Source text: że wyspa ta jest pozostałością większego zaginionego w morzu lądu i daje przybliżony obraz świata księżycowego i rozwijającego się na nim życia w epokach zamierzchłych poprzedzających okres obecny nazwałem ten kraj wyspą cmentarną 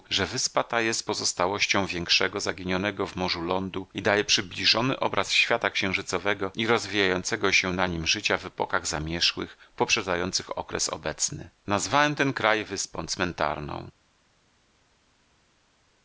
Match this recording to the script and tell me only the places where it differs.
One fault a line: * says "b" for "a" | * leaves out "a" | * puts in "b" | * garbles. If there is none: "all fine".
all fine